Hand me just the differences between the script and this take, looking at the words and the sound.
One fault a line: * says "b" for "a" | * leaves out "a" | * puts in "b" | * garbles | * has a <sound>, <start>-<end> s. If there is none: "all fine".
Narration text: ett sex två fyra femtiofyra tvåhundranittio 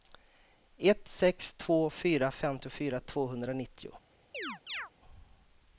* has a chirp, 4.3-4.9 s